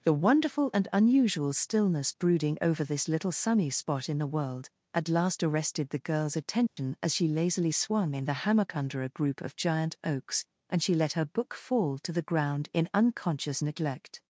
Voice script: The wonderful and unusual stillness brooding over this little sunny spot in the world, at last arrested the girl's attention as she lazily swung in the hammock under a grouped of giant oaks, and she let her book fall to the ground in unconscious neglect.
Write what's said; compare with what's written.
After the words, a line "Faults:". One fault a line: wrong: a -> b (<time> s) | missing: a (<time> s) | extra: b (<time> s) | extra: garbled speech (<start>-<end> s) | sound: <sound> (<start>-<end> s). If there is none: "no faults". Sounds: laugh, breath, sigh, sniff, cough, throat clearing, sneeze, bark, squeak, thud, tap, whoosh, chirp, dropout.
The wonderful and unusual stillness brooding over this little sunny spot in the world, at last arrested the girl's attention as she lazily swung in the hammock under a group of giant oaks, and she let her book fall to the ground in unconscious neglect.
Faults:
sound: dropout (6.7-6.8 s)
wrong: grouped -> group (9.1 s)